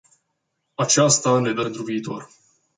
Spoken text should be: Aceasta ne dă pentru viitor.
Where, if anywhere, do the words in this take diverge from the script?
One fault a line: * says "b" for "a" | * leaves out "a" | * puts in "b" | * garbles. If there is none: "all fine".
all fine